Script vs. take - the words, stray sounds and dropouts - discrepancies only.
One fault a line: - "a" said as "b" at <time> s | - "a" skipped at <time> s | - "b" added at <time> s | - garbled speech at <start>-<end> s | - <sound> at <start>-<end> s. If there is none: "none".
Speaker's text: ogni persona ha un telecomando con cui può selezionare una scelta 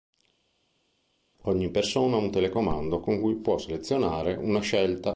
none